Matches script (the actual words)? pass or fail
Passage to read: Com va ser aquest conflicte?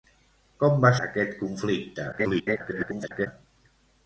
fail